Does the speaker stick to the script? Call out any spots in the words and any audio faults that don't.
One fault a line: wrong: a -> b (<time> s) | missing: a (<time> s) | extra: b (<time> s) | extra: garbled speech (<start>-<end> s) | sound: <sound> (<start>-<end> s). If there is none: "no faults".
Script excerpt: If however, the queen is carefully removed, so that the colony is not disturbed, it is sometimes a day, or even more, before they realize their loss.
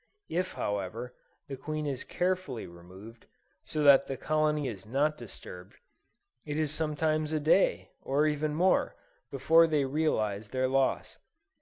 no faults